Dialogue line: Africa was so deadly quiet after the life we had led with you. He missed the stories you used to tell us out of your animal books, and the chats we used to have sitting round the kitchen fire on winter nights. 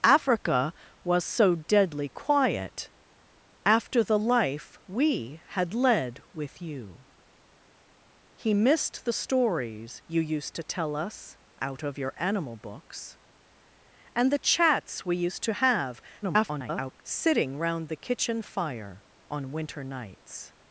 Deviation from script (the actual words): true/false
true